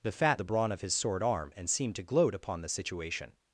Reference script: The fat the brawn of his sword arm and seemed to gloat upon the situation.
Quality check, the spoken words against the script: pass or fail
pass